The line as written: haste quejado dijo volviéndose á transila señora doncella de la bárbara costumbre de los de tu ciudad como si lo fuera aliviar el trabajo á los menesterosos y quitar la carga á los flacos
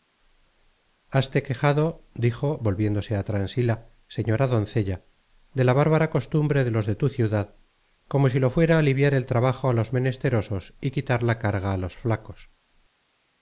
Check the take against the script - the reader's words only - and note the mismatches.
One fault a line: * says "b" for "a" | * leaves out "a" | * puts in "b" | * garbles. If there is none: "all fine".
all fine